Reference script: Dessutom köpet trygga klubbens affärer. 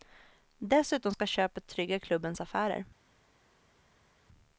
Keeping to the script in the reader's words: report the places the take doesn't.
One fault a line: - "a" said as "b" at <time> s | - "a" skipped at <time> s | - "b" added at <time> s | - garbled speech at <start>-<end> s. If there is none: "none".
- "ska" added at 1.1 s